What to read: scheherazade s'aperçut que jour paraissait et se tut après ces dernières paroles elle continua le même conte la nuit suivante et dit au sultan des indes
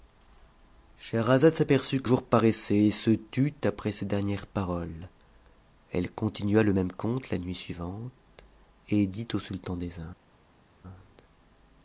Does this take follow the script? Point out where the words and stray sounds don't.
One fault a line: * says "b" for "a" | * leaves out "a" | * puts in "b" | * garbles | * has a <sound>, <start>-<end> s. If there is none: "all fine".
all fine